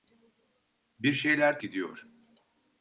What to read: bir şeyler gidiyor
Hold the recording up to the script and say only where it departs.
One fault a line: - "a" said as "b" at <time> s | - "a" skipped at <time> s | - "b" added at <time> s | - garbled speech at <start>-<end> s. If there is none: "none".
none